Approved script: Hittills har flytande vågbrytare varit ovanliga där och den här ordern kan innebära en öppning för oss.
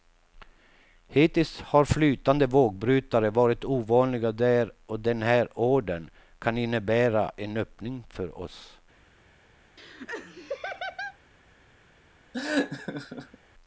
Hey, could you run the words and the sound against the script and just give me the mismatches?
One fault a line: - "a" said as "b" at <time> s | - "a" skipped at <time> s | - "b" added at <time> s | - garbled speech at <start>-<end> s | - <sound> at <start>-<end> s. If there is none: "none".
- laugh at 9.8-11.2 s
- laugh at 12.3-13.4 s